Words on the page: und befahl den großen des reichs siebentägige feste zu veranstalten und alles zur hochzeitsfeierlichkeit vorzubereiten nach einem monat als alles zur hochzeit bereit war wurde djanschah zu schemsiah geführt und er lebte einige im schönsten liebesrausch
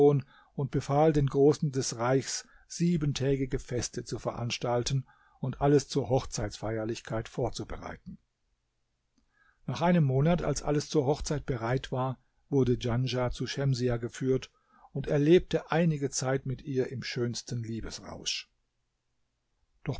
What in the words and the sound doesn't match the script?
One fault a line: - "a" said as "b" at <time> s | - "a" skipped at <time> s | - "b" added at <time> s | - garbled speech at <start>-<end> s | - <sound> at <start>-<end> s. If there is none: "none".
- "zeit mit ihr" added at 16.1 s